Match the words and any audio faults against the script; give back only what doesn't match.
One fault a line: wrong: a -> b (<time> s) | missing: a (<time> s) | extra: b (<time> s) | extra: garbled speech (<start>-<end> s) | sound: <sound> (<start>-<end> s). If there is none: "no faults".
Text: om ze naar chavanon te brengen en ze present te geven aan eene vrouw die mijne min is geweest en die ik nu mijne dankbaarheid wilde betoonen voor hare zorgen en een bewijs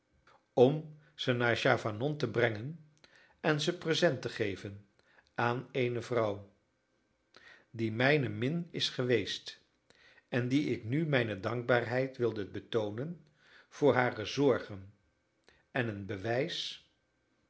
no faults